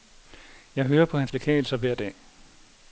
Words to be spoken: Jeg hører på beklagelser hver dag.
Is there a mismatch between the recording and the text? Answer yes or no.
yes